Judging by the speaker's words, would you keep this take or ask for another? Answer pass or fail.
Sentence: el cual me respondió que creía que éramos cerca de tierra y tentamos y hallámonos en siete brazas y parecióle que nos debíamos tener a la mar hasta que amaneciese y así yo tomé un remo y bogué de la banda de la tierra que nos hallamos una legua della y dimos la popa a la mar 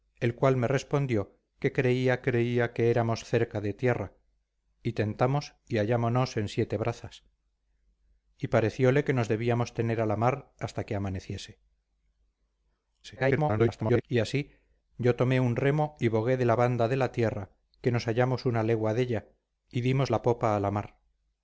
fail